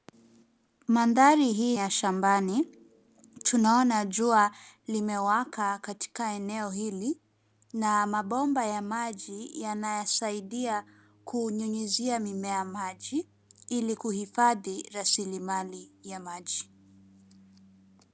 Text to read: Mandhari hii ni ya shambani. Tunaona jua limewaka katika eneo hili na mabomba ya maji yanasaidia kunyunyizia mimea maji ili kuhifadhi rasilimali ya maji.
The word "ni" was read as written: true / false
false